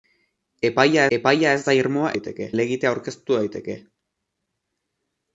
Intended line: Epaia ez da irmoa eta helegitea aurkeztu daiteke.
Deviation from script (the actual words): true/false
true